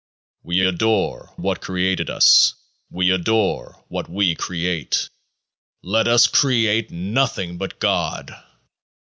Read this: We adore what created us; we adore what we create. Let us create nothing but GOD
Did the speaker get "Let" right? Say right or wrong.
right